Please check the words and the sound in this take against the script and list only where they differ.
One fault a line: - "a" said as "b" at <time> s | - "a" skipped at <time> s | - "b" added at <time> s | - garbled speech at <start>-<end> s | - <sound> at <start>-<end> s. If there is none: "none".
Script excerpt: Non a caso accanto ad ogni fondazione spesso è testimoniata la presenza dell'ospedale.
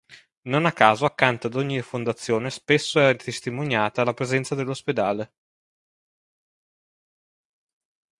none